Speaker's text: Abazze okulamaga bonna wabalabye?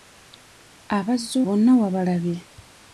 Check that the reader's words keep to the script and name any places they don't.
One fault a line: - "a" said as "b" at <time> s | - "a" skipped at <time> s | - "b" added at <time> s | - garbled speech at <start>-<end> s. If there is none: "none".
- "okulamaga" skipped at 1.4 s